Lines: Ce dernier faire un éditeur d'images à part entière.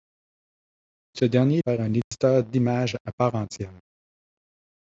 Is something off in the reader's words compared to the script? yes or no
no